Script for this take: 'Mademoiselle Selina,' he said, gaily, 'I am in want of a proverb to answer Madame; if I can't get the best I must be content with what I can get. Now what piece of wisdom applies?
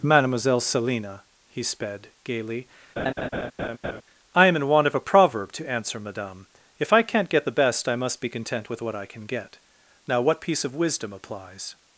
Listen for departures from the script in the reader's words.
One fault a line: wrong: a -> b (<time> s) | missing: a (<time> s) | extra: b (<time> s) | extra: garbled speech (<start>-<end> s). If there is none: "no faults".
wrong: said -> sped (1.6 s)